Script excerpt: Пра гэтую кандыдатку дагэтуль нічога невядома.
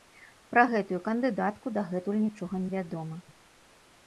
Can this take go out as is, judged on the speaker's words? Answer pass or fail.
pass